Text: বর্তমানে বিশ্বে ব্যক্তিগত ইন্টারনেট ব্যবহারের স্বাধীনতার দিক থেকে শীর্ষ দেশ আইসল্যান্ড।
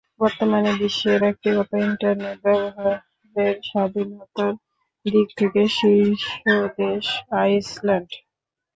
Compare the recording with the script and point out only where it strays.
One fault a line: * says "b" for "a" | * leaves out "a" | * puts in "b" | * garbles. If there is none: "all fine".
all fine